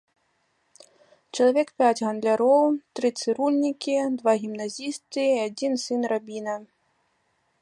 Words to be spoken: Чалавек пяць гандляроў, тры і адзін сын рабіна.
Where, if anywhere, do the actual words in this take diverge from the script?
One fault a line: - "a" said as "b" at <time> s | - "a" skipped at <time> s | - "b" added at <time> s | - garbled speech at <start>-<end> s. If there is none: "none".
- "цырульнікі два гімназісты" added at 3.2 s